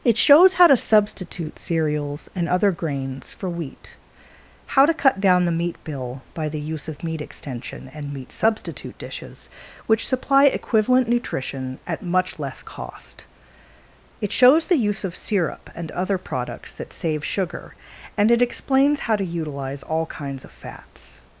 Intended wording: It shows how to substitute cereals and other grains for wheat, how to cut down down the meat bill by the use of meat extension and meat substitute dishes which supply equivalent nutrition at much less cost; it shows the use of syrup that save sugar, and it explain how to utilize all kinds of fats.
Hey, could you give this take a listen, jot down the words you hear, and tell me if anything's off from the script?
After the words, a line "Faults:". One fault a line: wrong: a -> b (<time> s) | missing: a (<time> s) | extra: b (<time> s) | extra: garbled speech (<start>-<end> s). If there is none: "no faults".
It shows how to substitute cereals and other grains for wheat, how to cut down the meat bill by the use of meat extension and meat substitute dishes which supply equivalent nutrition at much less cost; it shows the use of syrup and other products that save sugar, and it explains how to utilize all kinds of fats.
Faults:
missing: down (5.5 s)
extra: and other products (15.8 s)
wrong: explain -> explains (18.4 s)